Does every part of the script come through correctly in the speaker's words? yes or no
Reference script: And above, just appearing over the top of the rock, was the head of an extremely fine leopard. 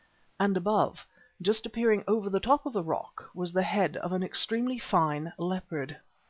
yes